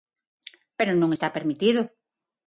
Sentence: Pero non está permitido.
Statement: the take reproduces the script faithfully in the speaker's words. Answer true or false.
true